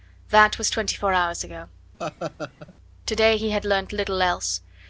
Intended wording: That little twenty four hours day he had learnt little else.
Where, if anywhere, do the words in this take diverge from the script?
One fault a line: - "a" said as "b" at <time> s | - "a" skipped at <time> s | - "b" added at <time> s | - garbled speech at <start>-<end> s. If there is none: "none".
- "little" said as "was" at 0.6 s
- "ago To" added at 1.4 s